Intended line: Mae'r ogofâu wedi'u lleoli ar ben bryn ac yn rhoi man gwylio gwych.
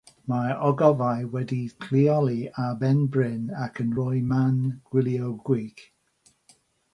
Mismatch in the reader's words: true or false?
false